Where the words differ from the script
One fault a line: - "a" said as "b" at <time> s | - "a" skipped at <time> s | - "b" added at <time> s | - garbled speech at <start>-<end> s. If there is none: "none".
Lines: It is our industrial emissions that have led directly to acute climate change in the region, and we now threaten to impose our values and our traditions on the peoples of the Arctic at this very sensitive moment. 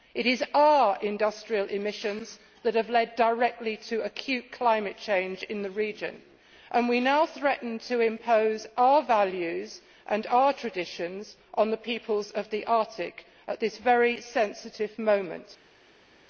none